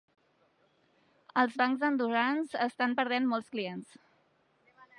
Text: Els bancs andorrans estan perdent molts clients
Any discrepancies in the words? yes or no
no